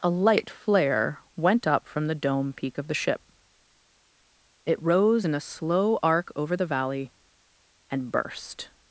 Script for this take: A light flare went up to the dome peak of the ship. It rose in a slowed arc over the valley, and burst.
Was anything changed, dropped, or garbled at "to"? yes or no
yes